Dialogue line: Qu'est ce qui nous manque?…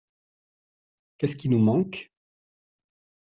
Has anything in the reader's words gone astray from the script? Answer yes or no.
no